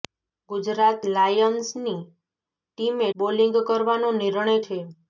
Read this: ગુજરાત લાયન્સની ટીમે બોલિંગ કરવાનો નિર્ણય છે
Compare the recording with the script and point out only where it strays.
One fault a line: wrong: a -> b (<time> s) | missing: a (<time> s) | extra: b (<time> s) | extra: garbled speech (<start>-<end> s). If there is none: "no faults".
no faults